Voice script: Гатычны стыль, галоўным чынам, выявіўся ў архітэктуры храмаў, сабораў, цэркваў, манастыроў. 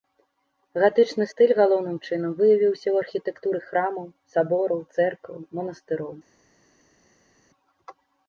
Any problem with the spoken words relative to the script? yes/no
no